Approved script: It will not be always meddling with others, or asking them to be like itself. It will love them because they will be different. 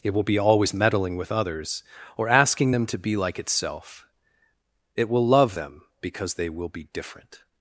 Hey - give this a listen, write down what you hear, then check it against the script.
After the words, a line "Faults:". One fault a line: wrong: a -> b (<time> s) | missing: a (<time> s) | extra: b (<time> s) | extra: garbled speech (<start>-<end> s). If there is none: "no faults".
It will be always meddling with others, or asking them to be like itself. It will love them because they will be different.
Faults:
missing: not (0.2 s)